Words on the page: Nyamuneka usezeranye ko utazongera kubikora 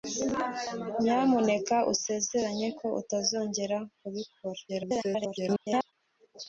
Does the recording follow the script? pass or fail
fail